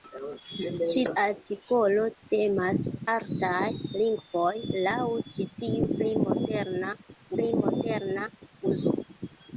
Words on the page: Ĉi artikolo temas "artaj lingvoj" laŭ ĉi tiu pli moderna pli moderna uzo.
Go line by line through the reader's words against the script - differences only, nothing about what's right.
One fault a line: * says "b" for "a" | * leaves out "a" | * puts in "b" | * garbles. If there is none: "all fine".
all fine